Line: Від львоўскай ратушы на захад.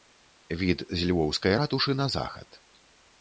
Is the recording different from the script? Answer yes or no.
yes